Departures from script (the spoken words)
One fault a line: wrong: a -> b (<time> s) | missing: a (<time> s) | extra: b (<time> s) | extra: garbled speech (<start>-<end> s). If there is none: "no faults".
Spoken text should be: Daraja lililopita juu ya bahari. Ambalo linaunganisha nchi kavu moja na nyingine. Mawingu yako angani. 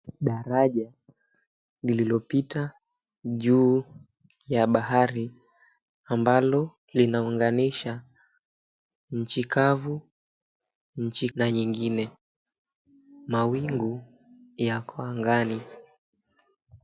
wrong: moja -> nchi (11.0 s)